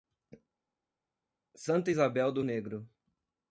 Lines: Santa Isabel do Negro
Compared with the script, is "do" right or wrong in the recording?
right